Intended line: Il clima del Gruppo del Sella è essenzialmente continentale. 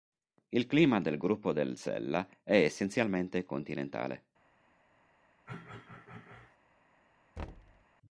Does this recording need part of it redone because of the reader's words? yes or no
no